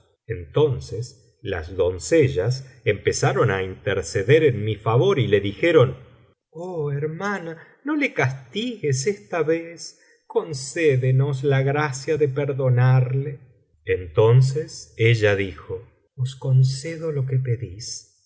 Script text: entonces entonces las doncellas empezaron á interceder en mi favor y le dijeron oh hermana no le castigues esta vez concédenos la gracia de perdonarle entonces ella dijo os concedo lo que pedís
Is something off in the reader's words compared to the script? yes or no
yes